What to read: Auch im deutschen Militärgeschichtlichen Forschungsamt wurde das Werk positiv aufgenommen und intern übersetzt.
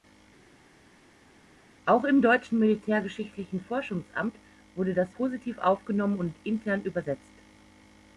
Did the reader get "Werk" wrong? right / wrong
wrong